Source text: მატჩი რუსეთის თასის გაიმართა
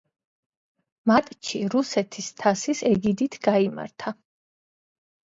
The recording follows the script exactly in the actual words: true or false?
false